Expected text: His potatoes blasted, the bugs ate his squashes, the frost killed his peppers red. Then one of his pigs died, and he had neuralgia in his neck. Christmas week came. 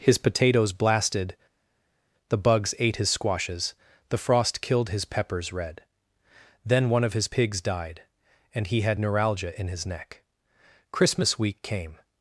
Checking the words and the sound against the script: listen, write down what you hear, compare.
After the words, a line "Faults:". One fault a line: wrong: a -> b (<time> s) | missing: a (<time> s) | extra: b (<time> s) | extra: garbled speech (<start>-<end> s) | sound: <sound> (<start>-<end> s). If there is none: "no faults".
His potatoes blasted, the bugs ate his squashes, the frost killed his peppers red. Then one of his pigs died, and he had neuralgia in his neck. Christmas week came.
Faults:
no faults